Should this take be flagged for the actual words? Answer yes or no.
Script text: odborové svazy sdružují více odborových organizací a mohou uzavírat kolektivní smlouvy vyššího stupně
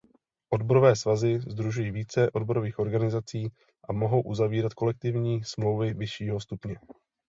no